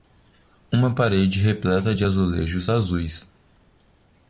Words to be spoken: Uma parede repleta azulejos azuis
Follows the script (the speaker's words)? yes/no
no